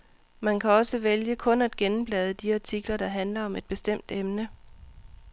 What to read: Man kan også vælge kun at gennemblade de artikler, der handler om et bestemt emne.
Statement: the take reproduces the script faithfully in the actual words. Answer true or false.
true